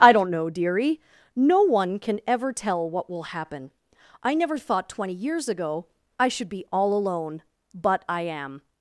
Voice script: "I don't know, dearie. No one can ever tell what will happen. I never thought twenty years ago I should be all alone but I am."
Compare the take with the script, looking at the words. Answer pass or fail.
pass